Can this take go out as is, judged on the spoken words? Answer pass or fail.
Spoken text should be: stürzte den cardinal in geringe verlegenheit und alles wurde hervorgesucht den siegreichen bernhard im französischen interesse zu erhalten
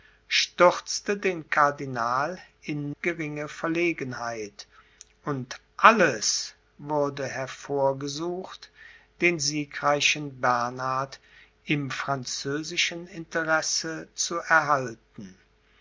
pass